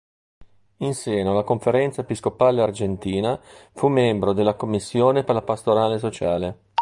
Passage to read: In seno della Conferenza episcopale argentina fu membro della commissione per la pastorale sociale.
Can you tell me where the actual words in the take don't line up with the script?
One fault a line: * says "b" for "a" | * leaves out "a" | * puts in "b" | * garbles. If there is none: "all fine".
* says "alla" for "della"